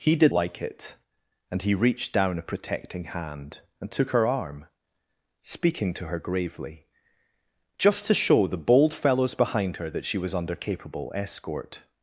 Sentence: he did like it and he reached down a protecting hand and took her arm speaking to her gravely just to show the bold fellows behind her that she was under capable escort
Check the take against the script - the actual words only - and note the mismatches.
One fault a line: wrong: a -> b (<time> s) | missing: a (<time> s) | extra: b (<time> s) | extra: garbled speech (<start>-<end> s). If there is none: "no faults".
no faults